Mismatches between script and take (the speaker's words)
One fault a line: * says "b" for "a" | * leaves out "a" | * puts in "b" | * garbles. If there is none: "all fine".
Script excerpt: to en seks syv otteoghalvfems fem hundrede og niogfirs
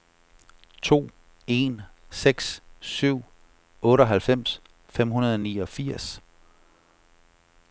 all fine